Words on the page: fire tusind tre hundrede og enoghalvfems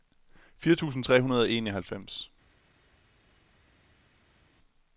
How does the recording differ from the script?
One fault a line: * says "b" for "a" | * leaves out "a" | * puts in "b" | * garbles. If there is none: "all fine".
all fine